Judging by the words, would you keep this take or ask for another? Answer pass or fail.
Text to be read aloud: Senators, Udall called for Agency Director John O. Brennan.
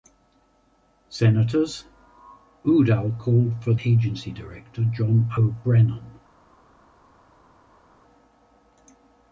pass